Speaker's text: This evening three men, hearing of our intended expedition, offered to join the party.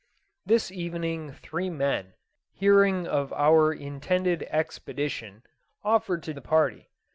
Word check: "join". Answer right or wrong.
wrong